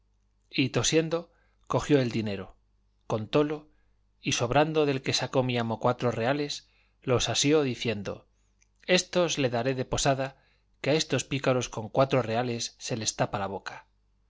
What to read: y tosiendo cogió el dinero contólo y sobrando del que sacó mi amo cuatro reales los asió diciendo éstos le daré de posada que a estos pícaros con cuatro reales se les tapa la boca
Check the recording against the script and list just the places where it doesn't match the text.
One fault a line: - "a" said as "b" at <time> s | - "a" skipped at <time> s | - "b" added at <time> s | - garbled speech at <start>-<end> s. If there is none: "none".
none